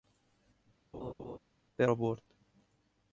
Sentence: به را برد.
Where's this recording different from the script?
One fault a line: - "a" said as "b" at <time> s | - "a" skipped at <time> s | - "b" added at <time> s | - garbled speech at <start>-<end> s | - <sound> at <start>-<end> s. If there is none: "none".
- laugh at 0.9-1.4 s